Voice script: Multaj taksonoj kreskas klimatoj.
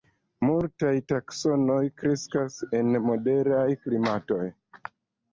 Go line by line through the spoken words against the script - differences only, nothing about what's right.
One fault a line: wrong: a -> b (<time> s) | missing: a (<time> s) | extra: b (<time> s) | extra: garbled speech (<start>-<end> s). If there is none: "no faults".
extra: en moderaj (2.8 s)